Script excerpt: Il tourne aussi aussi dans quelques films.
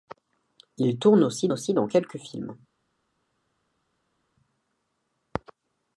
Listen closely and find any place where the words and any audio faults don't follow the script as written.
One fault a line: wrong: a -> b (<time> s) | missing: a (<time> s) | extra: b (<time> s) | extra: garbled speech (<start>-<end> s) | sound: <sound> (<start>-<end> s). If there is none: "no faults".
no faults